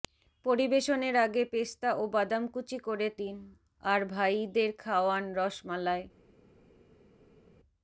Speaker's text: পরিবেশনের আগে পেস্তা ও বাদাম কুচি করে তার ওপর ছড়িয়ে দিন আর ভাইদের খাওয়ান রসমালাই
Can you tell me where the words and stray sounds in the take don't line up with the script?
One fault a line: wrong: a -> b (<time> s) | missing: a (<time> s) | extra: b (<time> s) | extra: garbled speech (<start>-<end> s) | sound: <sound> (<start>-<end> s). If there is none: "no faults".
missing: তার ওপর ছড়িয়ে (3.1 s)